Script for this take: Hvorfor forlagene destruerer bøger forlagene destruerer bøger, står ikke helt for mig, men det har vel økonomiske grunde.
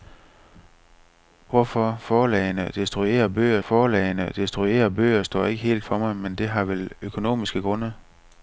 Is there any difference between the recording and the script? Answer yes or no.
no